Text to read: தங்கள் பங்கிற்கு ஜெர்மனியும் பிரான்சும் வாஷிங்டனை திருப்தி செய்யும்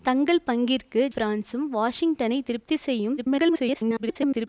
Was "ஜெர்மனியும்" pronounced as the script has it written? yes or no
no